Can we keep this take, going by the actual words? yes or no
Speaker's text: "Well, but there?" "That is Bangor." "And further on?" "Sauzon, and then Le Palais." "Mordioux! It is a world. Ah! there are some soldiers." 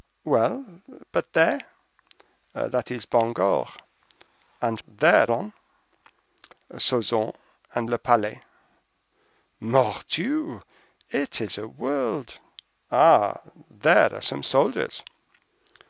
no